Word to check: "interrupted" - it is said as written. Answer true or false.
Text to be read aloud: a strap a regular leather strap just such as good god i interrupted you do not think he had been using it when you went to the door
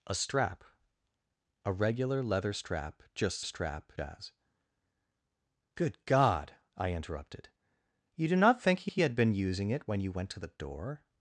true